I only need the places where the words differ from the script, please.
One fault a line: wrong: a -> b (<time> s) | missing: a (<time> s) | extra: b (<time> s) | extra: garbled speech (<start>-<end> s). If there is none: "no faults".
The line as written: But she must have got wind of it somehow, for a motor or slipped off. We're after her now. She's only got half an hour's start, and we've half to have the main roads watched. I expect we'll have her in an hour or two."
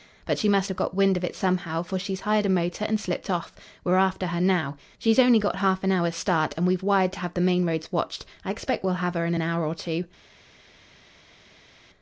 extra: she's hired (2.0 s)
wrong: or -> and (2.8 s)
wrong: half -> wired (6.8 s)